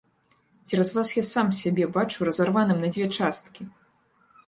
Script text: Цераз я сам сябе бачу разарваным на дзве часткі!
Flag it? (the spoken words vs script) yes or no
yes